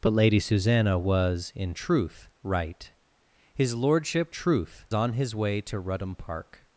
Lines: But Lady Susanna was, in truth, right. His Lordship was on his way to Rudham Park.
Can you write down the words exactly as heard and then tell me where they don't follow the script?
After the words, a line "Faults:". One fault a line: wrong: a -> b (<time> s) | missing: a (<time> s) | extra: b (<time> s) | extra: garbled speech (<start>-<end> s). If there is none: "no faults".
But Lady Susanna was, in truth, right. His Lordship truth on his way to Rudham Park.
Faults:
wrong: was -> truth (4.3 s)